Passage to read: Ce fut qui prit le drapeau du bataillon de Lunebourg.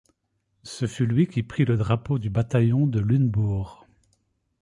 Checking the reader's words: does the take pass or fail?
fail